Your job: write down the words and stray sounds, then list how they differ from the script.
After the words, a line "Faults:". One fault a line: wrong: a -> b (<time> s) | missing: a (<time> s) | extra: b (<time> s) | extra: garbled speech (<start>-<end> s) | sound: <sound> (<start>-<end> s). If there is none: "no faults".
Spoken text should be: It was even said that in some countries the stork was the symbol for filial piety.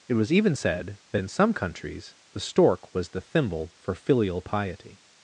It was even said that in some countries the stork was the thimble for filial piety.
Faults:
wrong: symbol -> thimble (3.2 s)